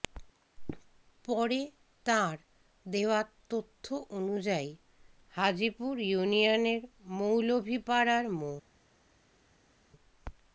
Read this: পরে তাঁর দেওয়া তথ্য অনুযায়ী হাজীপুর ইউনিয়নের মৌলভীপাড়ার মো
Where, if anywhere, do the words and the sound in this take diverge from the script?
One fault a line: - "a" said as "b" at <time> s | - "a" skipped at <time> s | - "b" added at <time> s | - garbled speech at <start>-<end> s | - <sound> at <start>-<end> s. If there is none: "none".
none